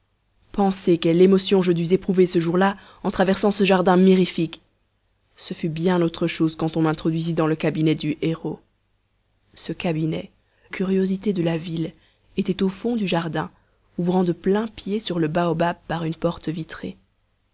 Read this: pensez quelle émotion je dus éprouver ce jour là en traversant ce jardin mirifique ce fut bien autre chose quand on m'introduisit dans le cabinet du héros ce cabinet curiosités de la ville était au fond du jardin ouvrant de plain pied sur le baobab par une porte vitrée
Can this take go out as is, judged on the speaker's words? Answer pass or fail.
pass